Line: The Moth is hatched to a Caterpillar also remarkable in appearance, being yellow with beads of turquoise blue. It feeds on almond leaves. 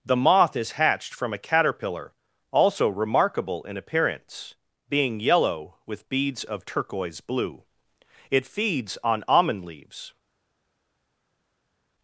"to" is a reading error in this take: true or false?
true